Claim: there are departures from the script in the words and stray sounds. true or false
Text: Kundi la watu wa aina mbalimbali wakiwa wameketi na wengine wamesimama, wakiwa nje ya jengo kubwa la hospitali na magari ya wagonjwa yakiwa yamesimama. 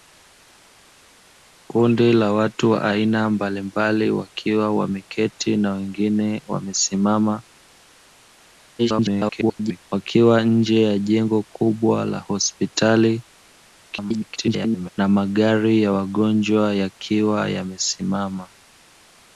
true